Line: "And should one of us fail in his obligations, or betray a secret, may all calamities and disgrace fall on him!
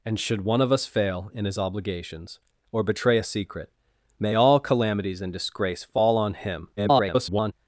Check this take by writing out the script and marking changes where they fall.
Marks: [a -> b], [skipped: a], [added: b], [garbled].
"And should one of us fail in his obligations, or betray a secret, may all calamities and disgrace fall on him! [garbled]